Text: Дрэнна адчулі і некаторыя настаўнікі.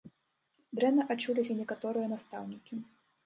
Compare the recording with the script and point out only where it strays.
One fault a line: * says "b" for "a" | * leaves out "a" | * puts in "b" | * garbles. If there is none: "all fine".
all fine